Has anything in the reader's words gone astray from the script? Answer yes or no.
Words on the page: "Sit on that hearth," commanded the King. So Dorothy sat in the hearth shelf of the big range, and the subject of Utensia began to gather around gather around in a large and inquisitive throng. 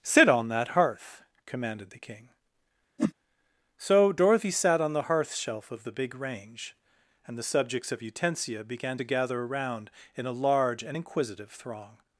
yes